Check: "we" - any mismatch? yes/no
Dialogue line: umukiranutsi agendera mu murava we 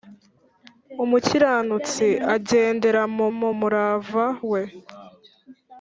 no